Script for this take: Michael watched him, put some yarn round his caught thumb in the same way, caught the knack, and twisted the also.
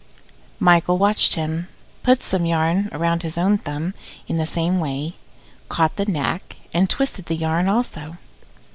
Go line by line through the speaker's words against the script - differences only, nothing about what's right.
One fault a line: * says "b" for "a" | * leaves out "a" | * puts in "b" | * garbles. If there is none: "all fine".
* says "own" for "caught"
* puts in "yarn"